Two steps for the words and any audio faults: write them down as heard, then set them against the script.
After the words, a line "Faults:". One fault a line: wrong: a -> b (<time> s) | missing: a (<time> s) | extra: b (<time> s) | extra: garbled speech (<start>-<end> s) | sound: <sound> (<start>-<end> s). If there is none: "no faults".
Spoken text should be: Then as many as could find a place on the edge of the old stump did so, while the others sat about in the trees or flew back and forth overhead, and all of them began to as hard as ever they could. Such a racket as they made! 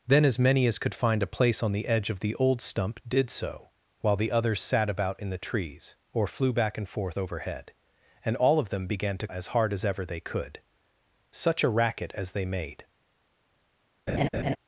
Then as many as could find a place on the edge of the old stump did so, while the others sat about in the trees or flew back and forth overhead, and all of them began to as hard as ever they could. Such a racket as they made!
Faults:
sound: laugh (14.1-14.6 s)